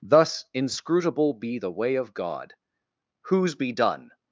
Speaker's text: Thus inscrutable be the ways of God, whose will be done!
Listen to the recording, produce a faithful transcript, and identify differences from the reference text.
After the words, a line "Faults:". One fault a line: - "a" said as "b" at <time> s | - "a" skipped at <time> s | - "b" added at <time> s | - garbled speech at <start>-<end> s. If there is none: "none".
Thus inscrutable be the way of God, whose be done!
Faults:
- "ways" said as "way" at 1.7 s
- "will" skipped at 3.5 s